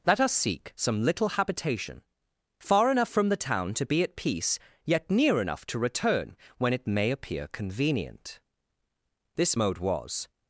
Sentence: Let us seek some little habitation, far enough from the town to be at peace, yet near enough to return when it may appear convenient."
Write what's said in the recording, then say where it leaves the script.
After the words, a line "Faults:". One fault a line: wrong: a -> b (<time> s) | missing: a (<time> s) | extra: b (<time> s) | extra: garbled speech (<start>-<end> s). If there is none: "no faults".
Let us seek some little habitation, far enough from the town to be at peace, yet near enough to return when it may appear convenient." This mode was
Faults:
extra: This mode was (9.3 s)